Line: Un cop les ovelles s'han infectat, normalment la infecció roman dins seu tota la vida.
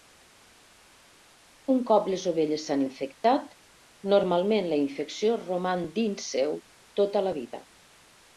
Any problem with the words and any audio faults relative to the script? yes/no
no